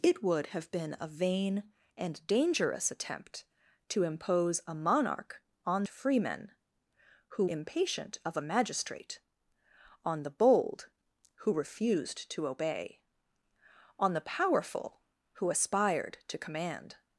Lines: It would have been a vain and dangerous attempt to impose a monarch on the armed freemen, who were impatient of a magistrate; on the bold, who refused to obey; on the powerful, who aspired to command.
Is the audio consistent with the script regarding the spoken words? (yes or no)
no